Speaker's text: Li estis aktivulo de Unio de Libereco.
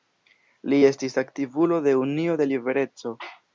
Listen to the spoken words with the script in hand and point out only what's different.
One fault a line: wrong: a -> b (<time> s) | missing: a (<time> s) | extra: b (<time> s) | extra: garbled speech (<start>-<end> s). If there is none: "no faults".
no faults